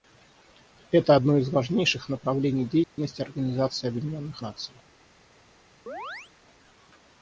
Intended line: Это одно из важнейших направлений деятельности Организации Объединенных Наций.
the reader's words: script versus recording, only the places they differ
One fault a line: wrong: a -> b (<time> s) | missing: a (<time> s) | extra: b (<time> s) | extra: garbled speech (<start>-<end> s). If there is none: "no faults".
no faults